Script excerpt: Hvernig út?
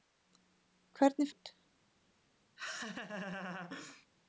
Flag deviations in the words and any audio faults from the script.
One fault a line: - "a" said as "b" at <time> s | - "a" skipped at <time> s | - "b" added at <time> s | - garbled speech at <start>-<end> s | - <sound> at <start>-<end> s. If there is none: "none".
- laugh at 2.6-4.1 s